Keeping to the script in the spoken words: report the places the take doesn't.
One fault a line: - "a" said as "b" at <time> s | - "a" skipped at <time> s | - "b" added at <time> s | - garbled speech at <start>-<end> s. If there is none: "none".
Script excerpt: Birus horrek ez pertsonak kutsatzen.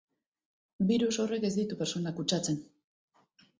- "ditu" added at 1.6 s